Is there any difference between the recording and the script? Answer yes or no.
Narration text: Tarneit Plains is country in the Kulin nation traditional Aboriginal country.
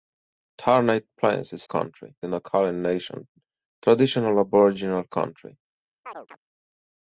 no